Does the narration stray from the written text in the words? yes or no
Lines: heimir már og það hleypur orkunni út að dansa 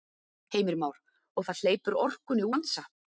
yes